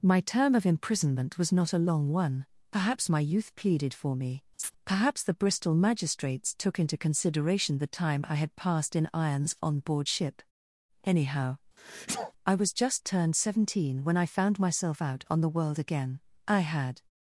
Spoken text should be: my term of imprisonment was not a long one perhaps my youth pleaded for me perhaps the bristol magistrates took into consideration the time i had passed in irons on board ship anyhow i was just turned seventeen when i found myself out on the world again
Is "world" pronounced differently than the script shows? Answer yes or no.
no